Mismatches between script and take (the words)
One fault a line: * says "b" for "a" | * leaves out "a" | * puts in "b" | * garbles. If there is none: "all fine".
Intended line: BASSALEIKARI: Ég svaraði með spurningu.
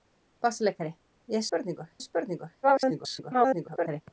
* says "spurningu" for "svaraði"
* garbles